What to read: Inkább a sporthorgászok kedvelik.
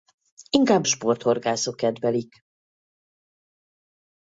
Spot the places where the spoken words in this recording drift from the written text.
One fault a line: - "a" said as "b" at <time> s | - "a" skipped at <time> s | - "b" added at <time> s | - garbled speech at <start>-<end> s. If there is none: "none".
- "a" skipped at 0.9 s